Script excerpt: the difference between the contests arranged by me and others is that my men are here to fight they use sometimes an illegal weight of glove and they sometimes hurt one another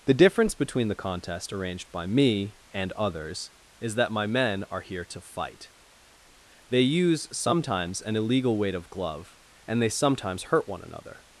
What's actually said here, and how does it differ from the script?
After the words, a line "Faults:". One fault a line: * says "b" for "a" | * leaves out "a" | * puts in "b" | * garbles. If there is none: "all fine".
the difference between the contest arranged by me and others is that my men are here to fight they use sometimes an illegal weight of glove and they sometimes hurt one another
Faults:
* says "contest" for "contests"